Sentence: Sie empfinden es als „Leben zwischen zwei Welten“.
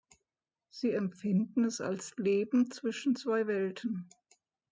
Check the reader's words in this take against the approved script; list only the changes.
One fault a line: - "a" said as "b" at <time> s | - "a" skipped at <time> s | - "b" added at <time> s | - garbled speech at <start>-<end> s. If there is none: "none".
none